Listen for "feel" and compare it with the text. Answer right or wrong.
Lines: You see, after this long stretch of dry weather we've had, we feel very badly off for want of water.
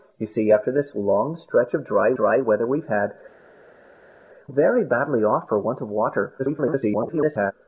wrong